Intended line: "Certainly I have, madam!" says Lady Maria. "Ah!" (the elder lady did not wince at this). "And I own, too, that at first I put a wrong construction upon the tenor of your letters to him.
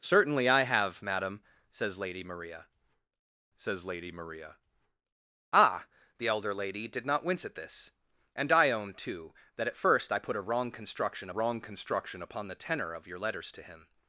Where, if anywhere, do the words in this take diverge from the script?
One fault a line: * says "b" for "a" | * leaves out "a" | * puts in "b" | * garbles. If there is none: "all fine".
* puts in "says Lady Maria"
* puts in "wrong construction"